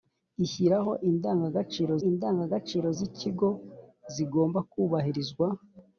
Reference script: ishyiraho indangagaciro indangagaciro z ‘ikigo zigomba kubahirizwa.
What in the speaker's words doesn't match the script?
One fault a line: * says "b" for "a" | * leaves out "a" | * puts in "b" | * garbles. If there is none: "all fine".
all fine